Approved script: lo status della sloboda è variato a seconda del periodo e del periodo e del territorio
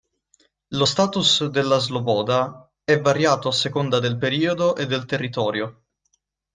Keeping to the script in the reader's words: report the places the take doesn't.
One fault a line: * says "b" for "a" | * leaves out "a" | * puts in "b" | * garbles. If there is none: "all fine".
* leaves out "periodo e del"